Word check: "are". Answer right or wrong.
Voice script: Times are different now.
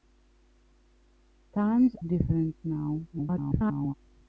wrong